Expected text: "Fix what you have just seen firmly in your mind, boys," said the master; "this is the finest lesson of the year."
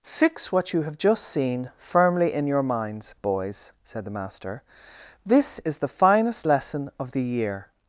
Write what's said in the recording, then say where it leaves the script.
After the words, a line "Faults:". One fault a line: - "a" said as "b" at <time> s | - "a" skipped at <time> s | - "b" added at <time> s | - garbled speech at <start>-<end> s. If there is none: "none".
"Fix what you have just seen firmly in your minds, boys," said the master; "this is the finest lesson of the year."
Faults:
- "mind" said as "minds" at 2.6 s